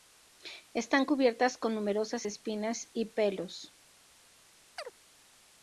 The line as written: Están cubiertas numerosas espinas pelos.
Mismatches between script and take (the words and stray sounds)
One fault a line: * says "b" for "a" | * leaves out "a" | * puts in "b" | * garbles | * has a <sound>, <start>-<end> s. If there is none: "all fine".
* puts in "con"
* puts in "y"
* has a chirp, 4.8-4.9 s